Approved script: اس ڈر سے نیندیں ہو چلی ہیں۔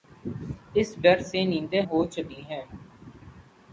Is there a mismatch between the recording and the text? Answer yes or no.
no